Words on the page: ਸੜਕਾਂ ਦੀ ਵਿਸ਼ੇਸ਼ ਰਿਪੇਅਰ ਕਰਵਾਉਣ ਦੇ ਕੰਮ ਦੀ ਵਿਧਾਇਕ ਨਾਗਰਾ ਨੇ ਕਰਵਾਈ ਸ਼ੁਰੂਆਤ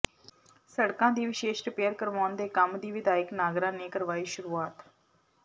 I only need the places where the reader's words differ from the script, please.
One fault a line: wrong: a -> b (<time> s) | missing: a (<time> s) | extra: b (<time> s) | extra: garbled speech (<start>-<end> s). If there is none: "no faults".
no faults